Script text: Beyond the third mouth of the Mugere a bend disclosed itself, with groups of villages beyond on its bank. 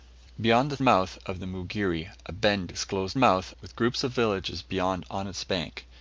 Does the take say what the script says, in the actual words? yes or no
no